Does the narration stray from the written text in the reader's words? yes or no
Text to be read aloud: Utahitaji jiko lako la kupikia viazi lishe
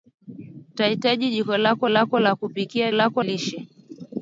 yes